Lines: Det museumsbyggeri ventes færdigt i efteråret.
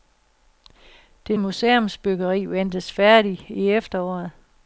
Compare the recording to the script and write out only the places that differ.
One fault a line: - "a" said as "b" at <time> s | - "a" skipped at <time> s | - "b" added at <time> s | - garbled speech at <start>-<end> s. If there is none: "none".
none